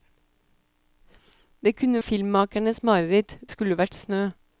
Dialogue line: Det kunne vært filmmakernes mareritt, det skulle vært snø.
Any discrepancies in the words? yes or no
yes